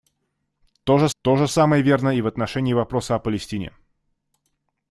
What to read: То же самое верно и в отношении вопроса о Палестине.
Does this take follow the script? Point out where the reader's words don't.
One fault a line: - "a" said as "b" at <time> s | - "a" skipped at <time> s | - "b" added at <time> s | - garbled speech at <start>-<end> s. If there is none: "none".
- "то же" added at 1.2 s